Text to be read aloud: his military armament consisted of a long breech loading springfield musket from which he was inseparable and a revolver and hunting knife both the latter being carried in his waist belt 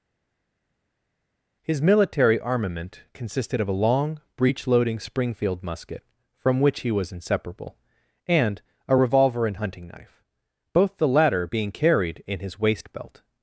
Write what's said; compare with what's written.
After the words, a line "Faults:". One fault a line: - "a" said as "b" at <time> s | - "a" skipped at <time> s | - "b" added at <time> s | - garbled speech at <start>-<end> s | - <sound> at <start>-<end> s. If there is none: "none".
his military armament consisted of a long breech loading springfield musket from which he was inseparable and a revolver and hunting knife both the latter being carried in his waist belt
Faults:
none